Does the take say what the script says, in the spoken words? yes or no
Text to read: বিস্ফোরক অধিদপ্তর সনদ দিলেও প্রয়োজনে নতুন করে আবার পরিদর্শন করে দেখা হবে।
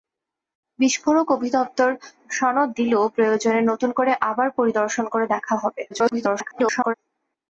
no